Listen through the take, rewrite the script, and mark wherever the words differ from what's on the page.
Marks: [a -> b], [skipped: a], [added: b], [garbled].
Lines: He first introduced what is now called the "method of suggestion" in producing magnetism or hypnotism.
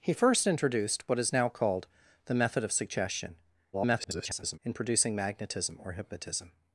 He first introduced what is now called the "method of suggestion" [garbled] in producing magnetism or hypnotism.